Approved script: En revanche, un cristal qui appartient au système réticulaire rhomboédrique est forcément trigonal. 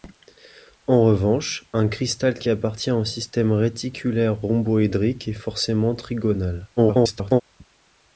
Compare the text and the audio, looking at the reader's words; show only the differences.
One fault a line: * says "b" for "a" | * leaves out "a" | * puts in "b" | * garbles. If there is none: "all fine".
* garbles